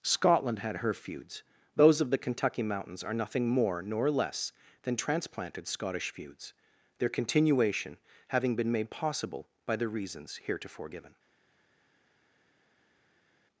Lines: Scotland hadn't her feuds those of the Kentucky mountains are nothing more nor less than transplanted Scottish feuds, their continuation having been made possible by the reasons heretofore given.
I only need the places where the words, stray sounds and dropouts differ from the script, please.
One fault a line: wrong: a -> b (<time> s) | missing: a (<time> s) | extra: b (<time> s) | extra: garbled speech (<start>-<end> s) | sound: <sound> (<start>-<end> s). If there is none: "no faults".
wrong: hadn't -> had (0.6 s)